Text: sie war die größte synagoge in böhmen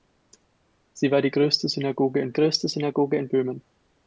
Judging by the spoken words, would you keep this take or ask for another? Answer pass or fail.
fail